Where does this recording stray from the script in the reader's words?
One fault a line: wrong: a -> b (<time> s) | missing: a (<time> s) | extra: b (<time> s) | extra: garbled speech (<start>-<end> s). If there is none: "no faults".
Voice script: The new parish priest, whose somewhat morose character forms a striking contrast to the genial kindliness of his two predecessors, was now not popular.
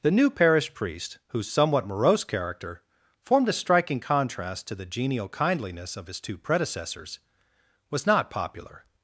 wrong: forms -> formed (3.2 s)
missing: now (8.1 s)